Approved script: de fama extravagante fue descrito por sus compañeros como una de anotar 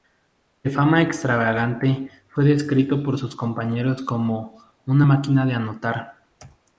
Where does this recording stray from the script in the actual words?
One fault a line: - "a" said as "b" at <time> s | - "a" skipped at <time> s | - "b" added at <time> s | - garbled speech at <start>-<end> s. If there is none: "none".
- "máquina" added at 5.0 s